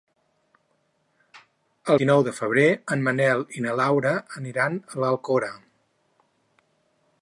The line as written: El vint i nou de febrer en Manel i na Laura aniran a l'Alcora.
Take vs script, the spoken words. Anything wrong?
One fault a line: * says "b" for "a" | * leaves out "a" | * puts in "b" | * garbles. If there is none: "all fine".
* leaves out "vint"